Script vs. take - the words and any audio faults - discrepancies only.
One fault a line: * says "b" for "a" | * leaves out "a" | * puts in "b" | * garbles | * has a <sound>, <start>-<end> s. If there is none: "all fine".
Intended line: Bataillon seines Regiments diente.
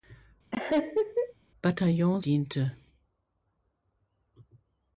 * has a laugh, 0.5-1.3 s
* leaves out "seines Regiments"